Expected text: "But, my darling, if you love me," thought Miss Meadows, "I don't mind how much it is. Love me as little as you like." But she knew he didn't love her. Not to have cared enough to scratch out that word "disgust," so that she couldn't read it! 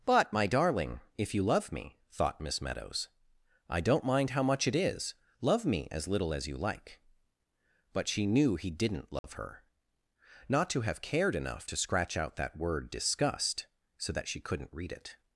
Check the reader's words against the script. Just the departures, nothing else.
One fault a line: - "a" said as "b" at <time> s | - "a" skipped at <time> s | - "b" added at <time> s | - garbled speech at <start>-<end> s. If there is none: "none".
none